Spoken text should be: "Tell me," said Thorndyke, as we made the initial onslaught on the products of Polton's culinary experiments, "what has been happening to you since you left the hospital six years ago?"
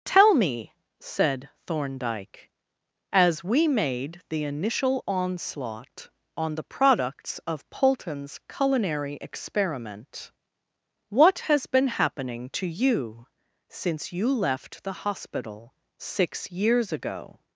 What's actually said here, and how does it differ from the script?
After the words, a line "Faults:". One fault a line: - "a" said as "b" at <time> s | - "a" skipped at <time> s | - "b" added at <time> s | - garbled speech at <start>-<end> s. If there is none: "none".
"Tell me," said Thorndyke, as we made the initial onslaught on the products of Polton's culinary experiment, "what has been happening to you since you left the hospital six years ago?"
Faults:
- "experiments" said as "experiment" at 9.2 s